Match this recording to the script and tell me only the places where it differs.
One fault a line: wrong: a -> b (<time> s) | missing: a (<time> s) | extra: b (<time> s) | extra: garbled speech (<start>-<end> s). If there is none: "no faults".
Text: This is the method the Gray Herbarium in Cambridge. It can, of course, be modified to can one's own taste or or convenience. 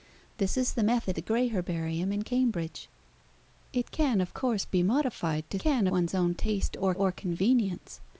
no faults